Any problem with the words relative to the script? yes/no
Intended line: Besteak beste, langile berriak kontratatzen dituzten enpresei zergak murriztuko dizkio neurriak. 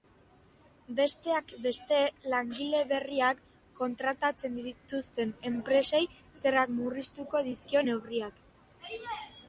no